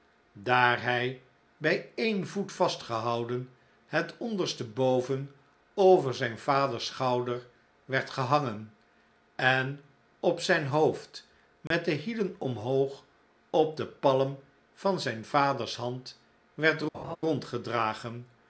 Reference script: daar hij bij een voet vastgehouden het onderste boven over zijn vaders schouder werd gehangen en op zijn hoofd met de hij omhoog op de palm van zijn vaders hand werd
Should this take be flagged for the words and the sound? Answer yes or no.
yes